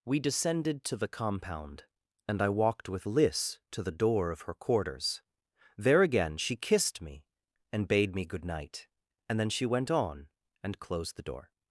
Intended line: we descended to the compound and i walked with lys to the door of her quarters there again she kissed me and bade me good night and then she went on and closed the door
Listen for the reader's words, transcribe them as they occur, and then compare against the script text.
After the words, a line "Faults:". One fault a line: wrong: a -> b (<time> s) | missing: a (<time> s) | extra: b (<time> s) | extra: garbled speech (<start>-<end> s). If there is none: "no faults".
we descended to the compound and i walked with lys to the door of her quarters there again she kissed me and bade me good night and then she went on and closed the door
Faults:
no faults